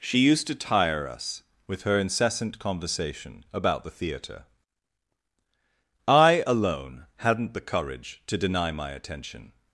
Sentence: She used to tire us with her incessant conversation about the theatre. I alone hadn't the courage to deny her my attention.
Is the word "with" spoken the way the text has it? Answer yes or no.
yes